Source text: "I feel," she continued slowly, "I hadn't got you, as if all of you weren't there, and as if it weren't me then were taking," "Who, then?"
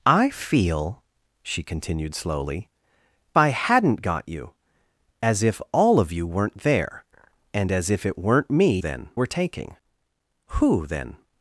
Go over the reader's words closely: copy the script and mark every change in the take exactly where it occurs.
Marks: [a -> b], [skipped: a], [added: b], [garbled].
"I feel," she continued slowly, "I hadn't got you, as if all of you weren't there, and as if it weren't me then were taking," "Who, then?"